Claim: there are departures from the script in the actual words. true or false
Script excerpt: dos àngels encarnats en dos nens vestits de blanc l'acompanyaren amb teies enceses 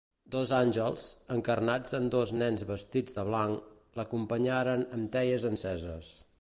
false